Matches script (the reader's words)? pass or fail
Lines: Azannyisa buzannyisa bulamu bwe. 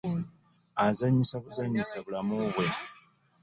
pass